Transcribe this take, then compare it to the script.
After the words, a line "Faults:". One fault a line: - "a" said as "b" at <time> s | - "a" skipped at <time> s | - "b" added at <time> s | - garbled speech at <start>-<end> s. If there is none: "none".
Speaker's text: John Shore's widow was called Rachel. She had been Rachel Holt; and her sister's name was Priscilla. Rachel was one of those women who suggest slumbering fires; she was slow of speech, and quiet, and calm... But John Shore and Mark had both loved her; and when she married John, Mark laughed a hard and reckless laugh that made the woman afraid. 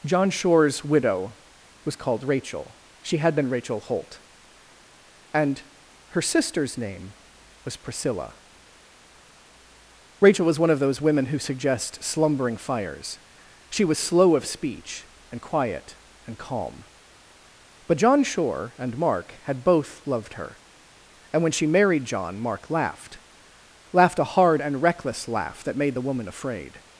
John Shore's widow was called Rachel. She had been Rachel Holt; and her sister's name was Priscilla. Rachel was one of those women who suggest slumbering fires; she was slow of speech, and quiet, and calm... But John Shore and Mark had both loved her; and when she married John, Mark laughed laughed a hard and reckless laugh that made the woman afraid.
Faults:
- "laughed" added at 23.9 s